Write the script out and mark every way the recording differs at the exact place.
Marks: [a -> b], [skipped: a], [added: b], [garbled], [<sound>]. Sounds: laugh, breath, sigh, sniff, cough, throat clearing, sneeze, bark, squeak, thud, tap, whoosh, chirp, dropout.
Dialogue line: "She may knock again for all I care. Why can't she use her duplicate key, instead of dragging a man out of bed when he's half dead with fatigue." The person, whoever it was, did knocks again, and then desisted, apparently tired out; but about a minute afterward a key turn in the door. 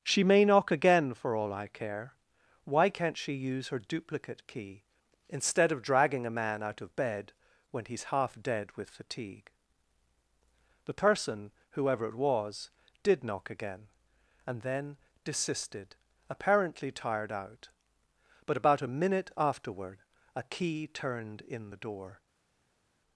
"She may knock again for all I care. Why can't she use her duplicate key, instead of dragging a man out of bed when he's half dead with fatigue." The person, whoever it was, did [knocks -> knock] again, and then desisted, apparently tired out; but about a minute afterward a key [turn -> turned] in the door.